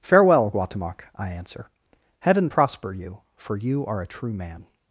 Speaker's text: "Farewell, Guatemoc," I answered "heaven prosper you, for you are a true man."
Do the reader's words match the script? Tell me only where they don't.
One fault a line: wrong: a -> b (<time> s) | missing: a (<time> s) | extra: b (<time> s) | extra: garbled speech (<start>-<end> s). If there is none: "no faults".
wrong: answered -> answer (1.3 s)